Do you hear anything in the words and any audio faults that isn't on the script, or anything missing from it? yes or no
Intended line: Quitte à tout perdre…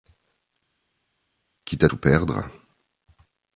no